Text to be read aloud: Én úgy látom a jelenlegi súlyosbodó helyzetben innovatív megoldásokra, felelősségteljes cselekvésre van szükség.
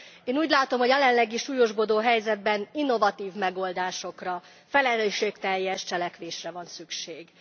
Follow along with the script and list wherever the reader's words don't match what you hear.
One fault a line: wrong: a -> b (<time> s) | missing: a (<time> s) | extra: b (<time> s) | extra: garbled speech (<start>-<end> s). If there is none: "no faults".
no faults